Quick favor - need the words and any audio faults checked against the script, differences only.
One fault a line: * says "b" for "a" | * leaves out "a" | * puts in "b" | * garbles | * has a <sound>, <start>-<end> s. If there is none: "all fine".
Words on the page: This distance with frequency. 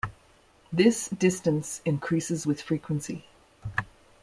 * puts in "increases"